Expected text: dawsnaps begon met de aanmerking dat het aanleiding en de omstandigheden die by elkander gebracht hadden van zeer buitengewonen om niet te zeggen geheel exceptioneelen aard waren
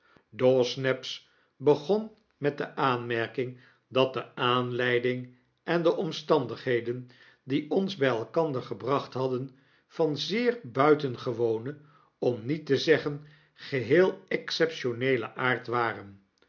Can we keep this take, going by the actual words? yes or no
no